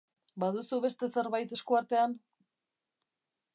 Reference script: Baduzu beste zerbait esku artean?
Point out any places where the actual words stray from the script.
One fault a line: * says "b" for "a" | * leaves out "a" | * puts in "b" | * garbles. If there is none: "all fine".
all fine